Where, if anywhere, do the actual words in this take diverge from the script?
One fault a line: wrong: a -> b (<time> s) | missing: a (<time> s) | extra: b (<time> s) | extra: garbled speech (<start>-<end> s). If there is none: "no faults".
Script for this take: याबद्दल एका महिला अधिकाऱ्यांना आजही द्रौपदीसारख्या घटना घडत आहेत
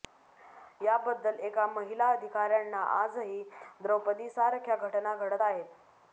no faults